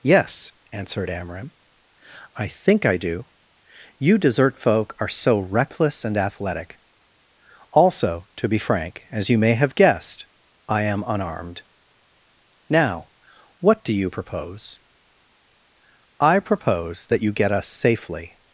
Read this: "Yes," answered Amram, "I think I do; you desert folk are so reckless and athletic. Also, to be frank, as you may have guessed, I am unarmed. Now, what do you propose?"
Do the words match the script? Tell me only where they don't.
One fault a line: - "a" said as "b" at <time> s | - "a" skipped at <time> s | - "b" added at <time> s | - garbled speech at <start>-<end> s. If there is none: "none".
- "I propose that you get us safely" added at 16.2 s